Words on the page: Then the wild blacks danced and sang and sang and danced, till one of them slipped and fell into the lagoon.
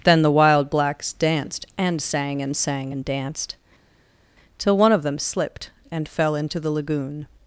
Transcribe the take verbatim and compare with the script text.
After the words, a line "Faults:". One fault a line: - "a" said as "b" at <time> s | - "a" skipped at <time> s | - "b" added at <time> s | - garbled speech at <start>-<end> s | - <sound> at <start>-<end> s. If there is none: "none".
Then the wild blacks danced and sang and sang and danced, till one of them slipped and fell into the lagoon.
Faults:
none